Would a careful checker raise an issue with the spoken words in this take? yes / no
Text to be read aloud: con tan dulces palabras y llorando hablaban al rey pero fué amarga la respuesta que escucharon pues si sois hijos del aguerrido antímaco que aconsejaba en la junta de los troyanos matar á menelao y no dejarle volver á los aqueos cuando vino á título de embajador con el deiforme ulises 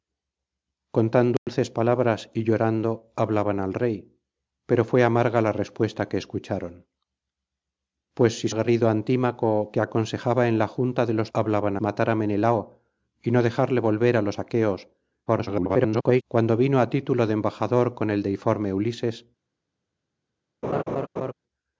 yes